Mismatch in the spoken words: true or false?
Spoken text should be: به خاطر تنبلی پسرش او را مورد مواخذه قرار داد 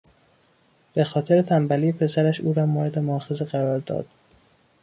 false